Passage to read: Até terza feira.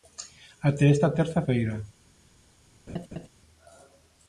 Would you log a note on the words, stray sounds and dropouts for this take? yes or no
yes